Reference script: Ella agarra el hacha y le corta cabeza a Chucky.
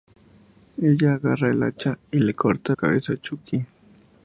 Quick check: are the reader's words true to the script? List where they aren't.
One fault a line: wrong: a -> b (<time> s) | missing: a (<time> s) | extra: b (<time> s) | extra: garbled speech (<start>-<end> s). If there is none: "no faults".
no faults